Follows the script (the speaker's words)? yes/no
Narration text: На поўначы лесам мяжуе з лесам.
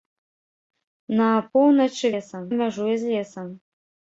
yes